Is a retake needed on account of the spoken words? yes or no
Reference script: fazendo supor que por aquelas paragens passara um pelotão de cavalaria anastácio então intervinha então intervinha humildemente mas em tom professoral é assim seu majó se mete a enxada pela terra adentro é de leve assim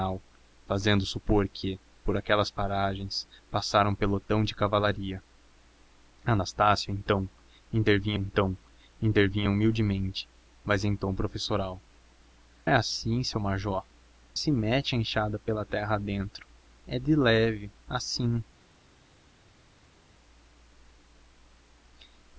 no